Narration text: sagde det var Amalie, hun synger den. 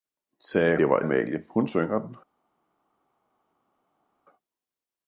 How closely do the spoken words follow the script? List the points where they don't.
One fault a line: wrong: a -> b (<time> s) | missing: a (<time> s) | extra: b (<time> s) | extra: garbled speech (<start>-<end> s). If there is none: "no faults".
no faults